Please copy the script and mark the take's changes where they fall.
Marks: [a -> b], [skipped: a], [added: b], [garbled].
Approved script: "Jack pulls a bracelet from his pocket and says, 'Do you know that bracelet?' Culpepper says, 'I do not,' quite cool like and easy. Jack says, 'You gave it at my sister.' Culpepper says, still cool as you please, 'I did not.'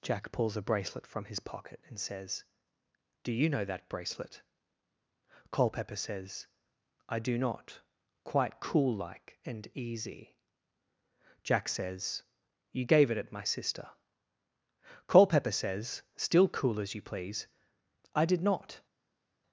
"Jack pulls a bracelet from his pocket and says, 'Do you know that bracelet?' Culpepper says, 'I do not,' quite cool like and easy. Jack says, 'You gave it at my sister.' Culpepper says, still cool as you please, 'I did not.'